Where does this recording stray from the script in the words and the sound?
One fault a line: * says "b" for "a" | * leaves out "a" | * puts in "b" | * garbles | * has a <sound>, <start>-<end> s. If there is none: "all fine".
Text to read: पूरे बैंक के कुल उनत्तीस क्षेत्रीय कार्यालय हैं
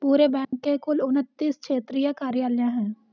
* has a dropout, 0.4-0.5 s